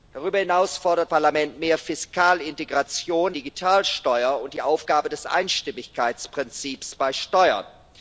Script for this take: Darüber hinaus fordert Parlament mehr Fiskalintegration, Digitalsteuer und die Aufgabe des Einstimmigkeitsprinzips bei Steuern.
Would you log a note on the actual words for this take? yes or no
no